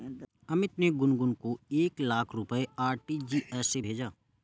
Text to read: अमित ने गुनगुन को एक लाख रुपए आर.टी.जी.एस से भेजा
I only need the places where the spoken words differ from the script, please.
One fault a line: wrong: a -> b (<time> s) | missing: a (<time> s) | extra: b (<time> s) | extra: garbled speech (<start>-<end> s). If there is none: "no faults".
no faults